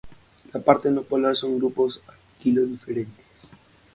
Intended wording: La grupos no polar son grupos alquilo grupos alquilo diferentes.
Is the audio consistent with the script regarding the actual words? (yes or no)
no